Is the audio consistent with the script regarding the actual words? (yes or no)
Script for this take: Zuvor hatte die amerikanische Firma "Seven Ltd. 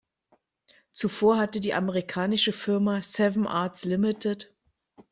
no